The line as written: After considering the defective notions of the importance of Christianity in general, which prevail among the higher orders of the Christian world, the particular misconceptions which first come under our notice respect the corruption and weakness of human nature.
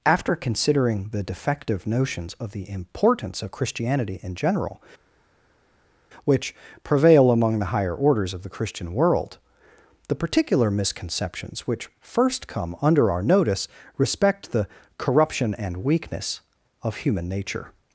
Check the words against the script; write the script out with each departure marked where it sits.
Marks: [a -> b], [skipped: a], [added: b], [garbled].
After considering the defective notions of the importance of Christianity in general, which prevail among the higher orders of the Christian world, the particular misconceptions which first come under our notice respect the corruption and weakness of human nature.